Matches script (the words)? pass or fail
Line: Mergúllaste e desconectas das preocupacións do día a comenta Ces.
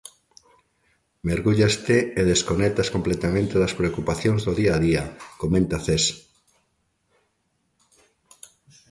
fail